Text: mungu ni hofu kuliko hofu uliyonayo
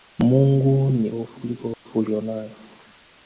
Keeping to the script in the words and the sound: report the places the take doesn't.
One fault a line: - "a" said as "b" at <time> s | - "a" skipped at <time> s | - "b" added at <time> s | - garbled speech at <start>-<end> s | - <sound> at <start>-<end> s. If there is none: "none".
- dropout at 1.7-1.9 s